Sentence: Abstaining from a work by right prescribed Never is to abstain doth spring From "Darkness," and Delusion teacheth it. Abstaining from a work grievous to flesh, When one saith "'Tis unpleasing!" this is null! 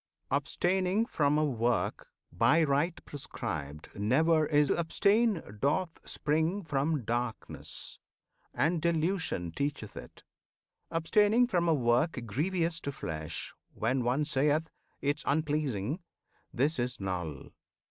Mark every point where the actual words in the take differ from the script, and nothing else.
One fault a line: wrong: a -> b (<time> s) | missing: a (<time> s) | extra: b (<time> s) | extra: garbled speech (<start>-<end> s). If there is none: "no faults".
no faults